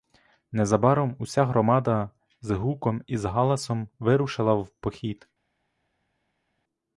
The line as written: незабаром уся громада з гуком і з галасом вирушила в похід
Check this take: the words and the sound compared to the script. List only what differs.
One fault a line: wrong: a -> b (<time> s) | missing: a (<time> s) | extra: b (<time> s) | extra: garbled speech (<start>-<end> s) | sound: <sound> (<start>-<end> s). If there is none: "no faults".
no faults